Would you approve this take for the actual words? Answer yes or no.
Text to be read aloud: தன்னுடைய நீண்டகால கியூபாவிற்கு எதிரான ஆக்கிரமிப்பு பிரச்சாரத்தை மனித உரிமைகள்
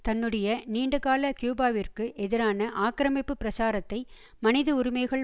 yes